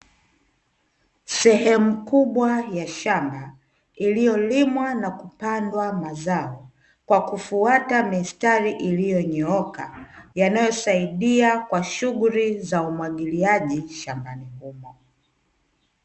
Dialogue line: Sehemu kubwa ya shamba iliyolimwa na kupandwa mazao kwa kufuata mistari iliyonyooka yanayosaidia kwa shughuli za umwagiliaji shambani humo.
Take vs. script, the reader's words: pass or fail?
pass